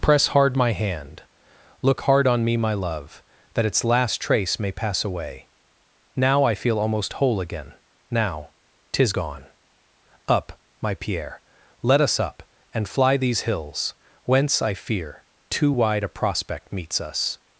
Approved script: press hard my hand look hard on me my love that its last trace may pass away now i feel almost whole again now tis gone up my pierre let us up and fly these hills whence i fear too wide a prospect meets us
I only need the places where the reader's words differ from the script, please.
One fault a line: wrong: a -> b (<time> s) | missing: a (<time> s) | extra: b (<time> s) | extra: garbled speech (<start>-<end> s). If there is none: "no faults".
no faults